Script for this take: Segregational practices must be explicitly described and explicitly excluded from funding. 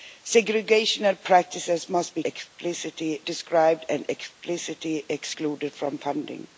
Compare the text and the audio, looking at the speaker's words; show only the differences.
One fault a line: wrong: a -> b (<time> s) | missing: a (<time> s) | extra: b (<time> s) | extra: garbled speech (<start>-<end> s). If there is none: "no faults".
no faults